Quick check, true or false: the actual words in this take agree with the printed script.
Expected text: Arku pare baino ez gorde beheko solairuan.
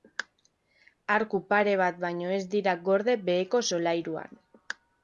false